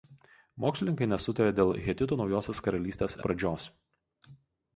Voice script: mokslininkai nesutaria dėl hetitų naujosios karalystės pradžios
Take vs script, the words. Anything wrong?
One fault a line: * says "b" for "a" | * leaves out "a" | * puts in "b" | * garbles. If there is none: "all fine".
all fine